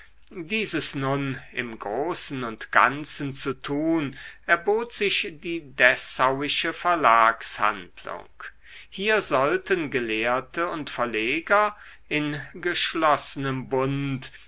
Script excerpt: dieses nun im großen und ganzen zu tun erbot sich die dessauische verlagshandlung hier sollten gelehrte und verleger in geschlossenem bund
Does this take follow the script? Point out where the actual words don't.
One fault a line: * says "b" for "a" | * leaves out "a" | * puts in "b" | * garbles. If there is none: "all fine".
all fine